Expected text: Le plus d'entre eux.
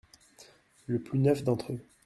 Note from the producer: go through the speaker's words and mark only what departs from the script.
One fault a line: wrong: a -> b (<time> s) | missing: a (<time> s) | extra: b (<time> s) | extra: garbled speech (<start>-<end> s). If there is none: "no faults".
extra: neuf (1.2 s)